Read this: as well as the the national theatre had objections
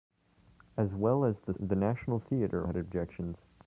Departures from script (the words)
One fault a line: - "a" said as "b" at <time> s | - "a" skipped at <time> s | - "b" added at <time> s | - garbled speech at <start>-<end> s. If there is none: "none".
none